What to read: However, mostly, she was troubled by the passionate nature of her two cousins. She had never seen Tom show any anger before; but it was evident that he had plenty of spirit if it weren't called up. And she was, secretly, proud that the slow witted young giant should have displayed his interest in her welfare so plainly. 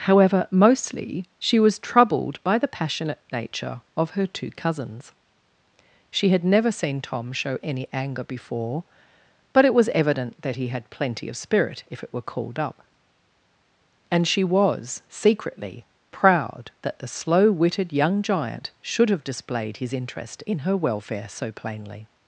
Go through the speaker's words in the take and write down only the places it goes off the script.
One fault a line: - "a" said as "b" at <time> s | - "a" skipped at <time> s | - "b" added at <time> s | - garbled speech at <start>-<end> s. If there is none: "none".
- "weren't" said as "were" at 12.1 s